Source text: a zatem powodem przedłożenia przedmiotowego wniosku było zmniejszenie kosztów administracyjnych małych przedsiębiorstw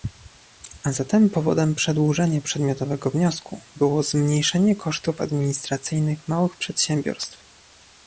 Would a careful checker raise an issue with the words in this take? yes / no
no